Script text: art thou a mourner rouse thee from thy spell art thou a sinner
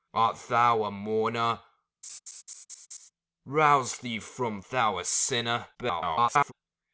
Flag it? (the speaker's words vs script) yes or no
yes